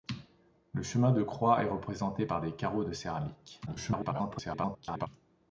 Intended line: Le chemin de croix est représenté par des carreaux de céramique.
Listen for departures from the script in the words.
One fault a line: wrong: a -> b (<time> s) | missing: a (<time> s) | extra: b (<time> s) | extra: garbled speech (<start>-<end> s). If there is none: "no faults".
extra: garbled speech (3.7-5.1 s)